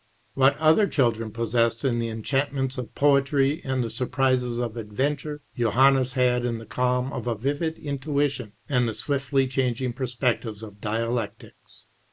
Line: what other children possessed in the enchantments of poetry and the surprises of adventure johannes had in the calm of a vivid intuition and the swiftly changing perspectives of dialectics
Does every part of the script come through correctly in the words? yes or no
yes